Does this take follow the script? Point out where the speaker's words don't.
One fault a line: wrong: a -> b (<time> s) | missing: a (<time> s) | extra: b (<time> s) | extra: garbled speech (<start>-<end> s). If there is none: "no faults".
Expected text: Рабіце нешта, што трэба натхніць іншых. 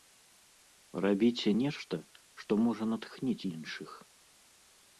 wrong: трэба -> можа (2.7 s)